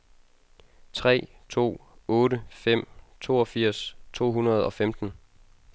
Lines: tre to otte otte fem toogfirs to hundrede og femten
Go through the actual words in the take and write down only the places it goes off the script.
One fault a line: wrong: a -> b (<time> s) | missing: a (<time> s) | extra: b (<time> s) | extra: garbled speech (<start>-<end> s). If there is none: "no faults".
missing: otte (2.4 s)